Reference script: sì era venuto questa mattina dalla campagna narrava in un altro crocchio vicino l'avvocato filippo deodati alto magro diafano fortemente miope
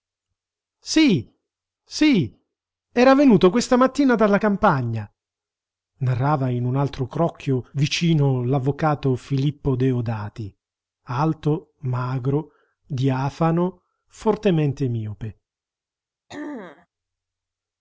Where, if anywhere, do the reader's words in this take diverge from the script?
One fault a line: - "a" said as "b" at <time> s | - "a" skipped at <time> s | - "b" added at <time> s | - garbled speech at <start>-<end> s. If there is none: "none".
- "sì" added at 1.8 s